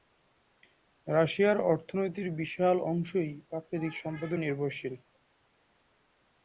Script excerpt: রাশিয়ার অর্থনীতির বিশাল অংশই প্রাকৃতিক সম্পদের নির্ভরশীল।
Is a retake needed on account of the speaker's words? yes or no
no